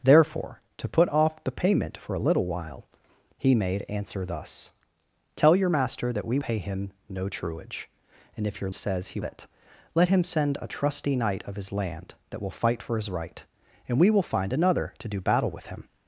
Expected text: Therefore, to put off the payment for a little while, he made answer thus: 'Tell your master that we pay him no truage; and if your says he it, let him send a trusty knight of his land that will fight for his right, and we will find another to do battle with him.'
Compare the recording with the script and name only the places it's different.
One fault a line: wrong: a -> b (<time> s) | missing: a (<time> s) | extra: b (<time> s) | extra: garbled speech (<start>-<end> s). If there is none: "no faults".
no faults